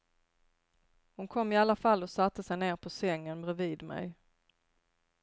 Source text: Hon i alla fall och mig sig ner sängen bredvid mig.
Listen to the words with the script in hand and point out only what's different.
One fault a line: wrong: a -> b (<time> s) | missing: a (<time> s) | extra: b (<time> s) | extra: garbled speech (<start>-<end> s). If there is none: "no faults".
extra: kom (1.3 s)
wrong: mig -> satte (2.1 s)
extra: på (2.8 s)